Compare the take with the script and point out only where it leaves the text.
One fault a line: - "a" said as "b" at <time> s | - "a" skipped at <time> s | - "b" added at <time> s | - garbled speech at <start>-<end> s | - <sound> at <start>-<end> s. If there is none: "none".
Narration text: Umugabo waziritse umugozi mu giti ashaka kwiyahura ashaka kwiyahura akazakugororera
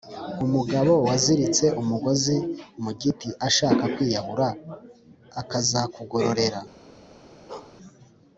- "ashaka kwiyahura" skipped at 4.5 s
- bark at 7.5-7.8 s